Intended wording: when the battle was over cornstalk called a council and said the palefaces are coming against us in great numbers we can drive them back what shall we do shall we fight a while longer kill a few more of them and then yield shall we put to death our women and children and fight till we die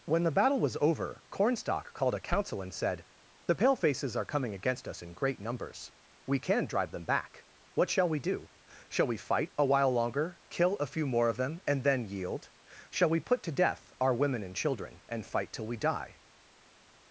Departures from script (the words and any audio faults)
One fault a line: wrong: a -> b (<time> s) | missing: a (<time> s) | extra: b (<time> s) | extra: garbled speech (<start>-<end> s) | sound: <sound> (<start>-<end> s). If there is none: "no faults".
no faults